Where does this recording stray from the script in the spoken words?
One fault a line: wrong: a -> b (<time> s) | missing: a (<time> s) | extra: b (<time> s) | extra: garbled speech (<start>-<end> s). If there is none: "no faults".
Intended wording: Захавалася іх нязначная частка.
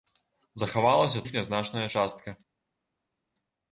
no faults